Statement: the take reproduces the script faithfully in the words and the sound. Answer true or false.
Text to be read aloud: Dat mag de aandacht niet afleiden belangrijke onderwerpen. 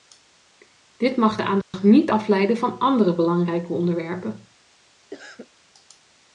false